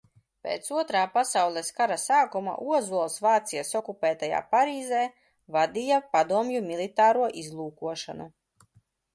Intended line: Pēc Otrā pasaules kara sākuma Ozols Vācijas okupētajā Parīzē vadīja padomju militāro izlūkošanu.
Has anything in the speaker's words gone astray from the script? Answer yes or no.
no